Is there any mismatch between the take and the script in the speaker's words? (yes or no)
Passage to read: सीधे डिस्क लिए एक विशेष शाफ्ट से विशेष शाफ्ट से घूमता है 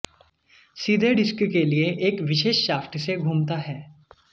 yes